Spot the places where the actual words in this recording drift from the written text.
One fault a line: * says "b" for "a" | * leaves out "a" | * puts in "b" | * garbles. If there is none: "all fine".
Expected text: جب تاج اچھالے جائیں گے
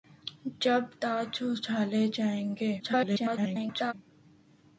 * garbles